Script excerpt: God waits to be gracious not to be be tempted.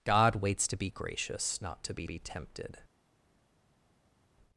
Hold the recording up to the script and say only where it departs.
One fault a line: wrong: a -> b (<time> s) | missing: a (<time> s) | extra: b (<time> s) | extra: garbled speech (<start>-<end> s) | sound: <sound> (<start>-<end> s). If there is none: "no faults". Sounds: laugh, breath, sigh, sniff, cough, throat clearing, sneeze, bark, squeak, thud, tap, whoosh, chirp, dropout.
no faults